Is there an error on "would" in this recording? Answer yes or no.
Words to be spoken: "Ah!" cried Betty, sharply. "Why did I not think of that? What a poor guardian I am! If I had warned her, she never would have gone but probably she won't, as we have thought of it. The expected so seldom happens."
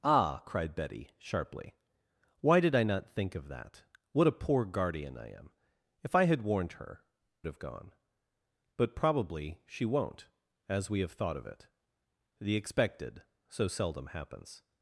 yes